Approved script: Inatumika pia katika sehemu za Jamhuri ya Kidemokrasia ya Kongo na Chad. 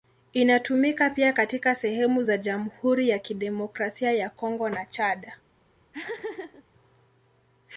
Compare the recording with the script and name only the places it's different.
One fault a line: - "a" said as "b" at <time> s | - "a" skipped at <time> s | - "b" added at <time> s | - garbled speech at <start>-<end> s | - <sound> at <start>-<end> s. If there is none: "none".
- laugh at 5.9-6.6 s